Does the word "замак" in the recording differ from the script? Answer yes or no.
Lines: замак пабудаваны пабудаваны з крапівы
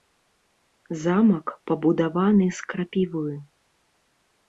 no